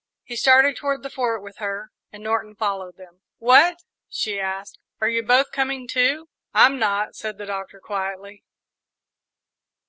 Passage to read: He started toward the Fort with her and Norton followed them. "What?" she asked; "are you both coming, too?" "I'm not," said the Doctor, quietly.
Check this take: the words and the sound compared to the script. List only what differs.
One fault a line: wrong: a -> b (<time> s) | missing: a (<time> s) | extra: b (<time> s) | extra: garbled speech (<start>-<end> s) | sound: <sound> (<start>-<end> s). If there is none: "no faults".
no faults